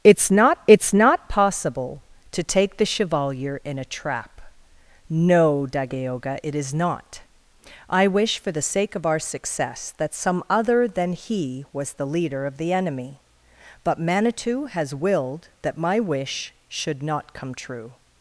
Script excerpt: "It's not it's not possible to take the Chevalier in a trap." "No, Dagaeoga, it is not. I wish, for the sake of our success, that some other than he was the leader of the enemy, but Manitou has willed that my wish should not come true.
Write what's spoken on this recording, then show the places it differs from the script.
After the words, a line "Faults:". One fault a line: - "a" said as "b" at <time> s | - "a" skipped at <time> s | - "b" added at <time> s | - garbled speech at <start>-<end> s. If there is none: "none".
"It's not it's not possible to take the Chevalier in a trap." "No, Dagaeoga, it is not. I wish, for the sake of our success, that some other than he was the leader of the enemy, but Manitou has willed that my wish should not come true.
Faults:
none